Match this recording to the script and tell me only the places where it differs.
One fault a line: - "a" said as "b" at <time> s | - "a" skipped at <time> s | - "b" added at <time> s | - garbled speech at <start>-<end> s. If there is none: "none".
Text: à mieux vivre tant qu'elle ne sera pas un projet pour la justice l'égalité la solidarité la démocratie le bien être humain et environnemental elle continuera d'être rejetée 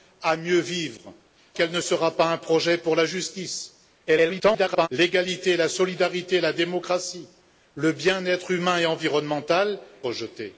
- "tant" skipped at 1.1 s
- garbled speech at 4.1-4.9 s
- "elle continuera d'être" skipped at 9.8 s